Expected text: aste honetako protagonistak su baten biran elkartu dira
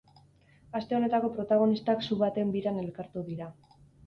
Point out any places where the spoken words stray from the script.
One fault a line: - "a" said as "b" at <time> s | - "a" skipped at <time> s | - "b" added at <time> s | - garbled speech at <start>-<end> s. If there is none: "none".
none